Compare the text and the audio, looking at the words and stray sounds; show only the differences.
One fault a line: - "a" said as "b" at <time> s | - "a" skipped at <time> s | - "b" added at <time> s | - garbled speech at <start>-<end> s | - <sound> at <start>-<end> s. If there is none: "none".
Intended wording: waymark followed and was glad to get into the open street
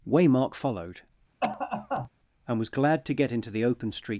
- cough at 1.4-2.1 s